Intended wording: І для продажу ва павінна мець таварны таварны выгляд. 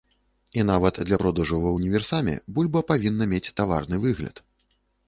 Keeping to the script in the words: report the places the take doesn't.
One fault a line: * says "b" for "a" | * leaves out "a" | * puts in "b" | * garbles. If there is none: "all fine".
* puts in "нават"
* puts in "ўніверсаме бульба"
* leaves out "таварны"